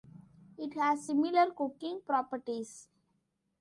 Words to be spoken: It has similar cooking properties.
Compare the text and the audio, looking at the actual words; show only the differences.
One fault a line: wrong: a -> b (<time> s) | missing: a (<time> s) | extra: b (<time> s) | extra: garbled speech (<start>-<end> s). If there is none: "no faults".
no faults